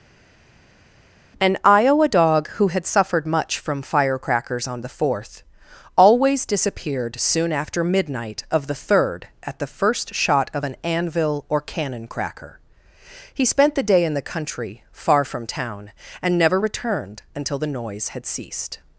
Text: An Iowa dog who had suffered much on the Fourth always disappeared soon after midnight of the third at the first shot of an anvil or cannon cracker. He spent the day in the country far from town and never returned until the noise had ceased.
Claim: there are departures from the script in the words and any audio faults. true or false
true